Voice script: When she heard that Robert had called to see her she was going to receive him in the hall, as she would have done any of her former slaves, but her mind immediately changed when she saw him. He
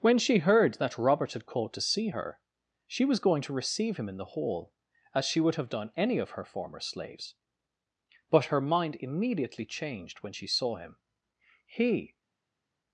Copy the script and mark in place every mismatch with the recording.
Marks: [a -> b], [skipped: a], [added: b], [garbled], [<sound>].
When she heard that Robert had called to see her she was going to receive him in the hall, as she would have done any of her former slaves, but her mind immediately changed when she saw him. He